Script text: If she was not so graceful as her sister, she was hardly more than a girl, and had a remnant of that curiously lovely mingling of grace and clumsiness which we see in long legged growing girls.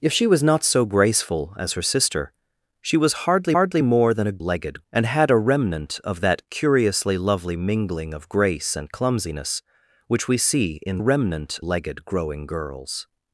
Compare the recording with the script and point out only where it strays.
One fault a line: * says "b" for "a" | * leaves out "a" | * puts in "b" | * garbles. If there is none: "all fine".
* puts in "hardly"
* says "legged" for "girl"
* says "remnant" for "long"